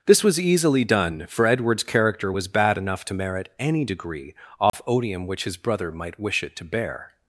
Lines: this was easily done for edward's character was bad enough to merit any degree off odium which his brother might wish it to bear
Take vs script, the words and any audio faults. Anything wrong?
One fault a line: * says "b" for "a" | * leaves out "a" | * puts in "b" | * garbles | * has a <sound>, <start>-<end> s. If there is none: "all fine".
* has a dropout, 4.7-4.7 s